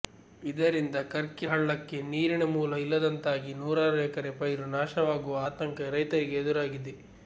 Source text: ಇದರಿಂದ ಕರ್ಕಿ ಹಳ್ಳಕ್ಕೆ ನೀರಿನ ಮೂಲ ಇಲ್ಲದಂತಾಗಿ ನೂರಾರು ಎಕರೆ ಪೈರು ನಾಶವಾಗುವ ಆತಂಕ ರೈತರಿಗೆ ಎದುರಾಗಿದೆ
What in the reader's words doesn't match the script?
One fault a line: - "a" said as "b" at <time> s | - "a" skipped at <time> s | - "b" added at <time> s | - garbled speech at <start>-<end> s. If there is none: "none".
none